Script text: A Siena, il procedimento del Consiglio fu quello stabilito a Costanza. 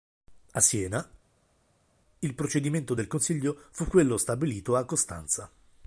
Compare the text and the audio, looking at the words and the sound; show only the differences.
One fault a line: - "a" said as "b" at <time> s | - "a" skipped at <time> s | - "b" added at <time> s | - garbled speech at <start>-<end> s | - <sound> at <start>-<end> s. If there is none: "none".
none